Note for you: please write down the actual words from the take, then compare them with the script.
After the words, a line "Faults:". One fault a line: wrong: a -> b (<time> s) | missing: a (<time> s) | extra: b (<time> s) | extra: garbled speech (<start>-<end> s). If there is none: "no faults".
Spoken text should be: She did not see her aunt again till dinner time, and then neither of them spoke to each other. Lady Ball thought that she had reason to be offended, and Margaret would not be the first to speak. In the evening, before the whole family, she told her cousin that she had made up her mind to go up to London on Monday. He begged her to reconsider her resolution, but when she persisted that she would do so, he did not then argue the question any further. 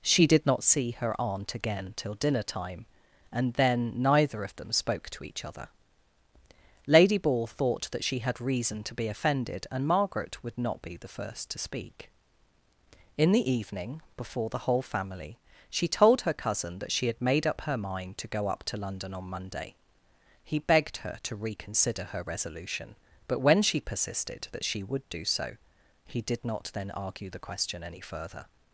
She did not see her aunt again till dinner time, and then neither of them spoke to each other. Lady Ball thought that she had reason to be offended, and Margaret would not be the first to speak. In the evening, before the whole family, she told her cousin that she had made up her mind to go up to London on Monday. He begged her to reconsider her resolution, but when she persisted that she would do so, he did not then argue the question any further.
Faults:
no faults